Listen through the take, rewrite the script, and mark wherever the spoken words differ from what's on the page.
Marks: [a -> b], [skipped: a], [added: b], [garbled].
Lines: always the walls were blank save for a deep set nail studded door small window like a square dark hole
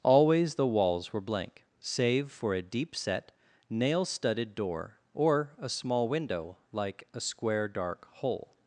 always the walls were blank save for a deep set nail studded door [added: or a] small window like a square dark hole